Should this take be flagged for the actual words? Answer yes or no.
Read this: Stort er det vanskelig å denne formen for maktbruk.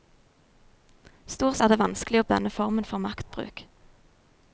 no